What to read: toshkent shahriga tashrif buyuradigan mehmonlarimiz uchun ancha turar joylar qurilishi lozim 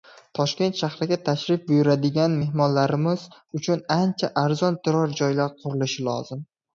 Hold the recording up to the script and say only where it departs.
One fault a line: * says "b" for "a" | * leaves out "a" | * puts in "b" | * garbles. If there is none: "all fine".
* puts in "arzon"